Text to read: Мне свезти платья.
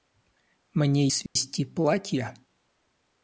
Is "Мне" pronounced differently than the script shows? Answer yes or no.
no